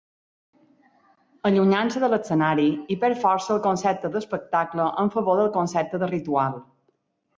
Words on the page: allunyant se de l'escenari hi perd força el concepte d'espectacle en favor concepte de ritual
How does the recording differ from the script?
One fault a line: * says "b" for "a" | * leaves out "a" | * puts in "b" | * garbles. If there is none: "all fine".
* puts in "del"